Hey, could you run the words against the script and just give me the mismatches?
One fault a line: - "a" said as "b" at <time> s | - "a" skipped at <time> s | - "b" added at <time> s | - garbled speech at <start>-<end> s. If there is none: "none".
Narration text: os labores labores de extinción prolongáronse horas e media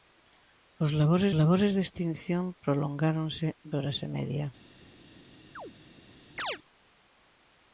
none